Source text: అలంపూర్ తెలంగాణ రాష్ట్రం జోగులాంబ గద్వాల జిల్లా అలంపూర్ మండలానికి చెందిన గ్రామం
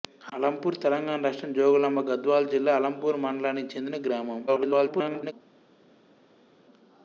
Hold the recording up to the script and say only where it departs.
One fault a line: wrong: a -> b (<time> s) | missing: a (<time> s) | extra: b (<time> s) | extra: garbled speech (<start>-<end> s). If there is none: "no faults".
extra: garbled speech (4.5-5.3 s)